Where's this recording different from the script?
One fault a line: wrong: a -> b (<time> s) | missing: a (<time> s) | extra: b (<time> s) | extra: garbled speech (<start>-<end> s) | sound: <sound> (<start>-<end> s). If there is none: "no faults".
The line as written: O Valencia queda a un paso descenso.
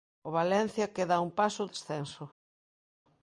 no faults